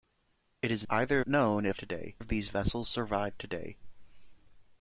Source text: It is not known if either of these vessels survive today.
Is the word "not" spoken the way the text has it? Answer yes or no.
no